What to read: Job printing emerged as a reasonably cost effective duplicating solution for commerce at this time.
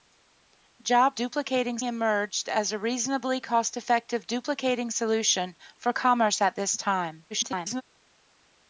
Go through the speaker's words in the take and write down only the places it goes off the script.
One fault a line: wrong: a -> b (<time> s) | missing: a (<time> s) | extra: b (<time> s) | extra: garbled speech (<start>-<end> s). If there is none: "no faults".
wrong: printing -> duplicating (1.1 s)
extra: garbled speech (7.3-7.8 s)